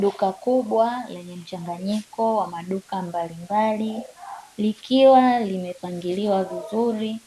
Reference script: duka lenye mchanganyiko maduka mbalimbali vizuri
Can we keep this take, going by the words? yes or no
no